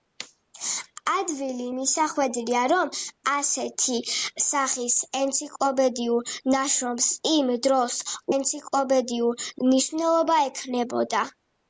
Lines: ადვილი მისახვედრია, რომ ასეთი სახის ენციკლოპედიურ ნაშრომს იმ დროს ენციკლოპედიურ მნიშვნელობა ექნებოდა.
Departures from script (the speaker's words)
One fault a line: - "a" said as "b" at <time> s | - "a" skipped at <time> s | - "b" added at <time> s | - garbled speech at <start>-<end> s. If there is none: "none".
none